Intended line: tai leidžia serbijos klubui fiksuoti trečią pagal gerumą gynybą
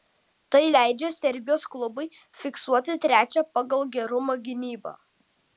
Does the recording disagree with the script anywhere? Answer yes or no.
no